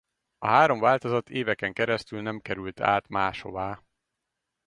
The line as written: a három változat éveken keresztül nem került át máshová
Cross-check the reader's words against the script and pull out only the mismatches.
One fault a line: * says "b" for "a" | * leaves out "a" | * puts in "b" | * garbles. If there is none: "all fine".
all fine